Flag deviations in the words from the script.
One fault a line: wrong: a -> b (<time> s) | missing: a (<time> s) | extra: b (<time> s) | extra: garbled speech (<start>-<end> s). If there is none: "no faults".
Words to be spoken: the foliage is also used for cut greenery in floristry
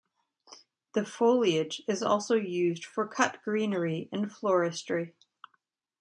no faults